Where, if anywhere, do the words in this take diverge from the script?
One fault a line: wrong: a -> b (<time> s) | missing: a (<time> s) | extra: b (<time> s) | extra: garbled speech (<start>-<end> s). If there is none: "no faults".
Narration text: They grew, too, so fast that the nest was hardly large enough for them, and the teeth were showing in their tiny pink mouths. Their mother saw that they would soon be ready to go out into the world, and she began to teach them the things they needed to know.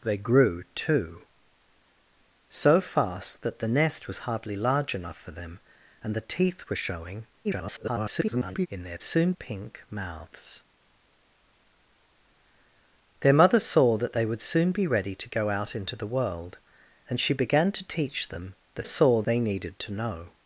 extra: garbled speech (7.4-8.7 s)
wrong: tiny -> soon (9.0 s)
wrong: things -> saw (18.8 s)